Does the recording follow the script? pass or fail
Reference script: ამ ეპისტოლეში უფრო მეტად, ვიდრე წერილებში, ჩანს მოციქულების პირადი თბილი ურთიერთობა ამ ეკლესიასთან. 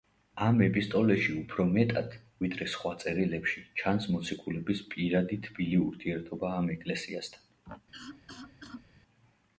fail